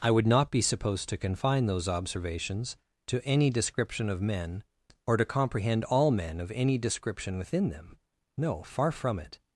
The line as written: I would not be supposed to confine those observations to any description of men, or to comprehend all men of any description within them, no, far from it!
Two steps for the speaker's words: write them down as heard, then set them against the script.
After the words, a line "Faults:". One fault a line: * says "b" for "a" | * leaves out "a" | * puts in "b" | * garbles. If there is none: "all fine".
I would not be supposed to confine those observations to any description of men, or to comprehend all men of any description within them, no, far from it!
Faults:
all fine